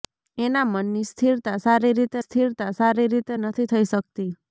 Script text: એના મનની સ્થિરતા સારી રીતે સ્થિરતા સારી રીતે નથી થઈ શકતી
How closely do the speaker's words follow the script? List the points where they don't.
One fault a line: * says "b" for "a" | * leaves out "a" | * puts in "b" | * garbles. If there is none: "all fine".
all fine